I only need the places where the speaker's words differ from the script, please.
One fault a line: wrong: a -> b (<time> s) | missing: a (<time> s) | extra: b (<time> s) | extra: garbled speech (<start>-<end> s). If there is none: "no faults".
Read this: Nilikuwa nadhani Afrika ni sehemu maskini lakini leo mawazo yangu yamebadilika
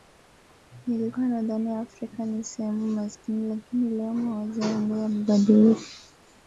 no faults